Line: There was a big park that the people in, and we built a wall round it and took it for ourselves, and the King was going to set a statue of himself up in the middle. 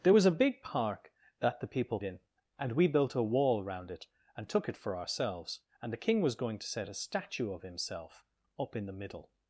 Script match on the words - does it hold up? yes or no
yes